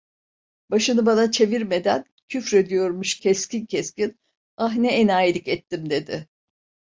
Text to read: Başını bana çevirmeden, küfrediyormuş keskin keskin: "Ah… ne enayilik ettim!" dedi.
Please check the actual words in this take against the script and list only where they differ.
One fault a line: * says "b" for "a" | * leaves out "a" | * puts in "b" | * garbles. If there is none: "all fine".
all fine